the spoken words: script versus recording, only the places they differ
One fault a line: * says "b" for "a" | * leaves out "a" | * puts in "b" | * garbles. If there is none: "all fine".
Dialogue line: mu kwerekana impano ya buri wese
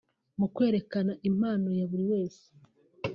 all fine